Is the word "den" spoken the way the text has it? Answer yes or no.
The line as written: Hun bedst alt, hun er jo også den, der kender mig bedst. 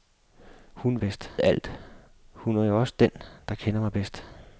yes